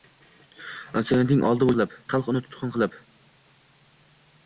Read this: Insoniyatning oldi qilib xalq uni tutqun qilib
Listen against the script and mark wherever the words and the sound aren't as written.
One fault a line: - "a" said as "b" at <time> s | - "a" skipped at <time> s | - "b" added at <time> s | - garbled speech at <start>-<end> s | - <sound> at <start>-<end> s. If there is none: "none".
none